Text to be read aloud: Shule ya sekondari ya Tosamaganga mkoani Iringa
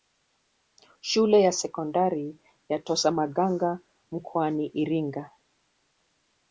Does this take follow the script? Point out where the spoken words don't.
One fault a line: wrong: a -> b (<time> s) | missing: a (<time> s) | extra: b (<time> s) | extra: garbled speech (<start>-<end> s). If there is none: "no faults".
no faults